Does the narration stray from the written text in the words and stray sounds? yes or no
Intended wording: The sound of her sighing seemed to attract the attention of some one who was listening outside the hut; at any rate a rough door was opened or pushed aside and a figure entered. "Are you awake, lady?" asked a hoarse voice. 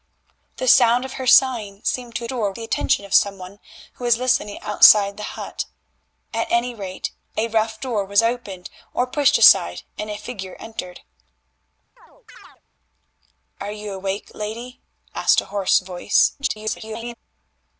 yes